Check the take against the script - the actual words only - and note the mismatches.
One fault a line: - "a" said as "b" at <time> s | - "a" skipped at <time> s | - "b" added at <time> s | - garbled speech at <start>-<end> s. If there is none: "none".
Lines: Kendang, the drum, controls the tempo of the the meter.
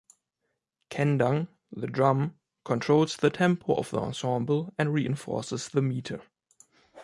- "ensemble and reinforces" added at 4.0 s